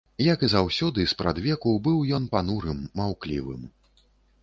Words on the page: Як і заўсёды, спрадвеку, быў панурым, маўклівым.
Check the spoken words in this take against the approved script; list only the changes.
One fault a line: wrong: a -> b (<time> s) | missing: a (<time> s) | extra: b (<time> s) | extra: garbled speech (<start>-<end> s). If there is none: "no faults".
extra: ён (2.2 s)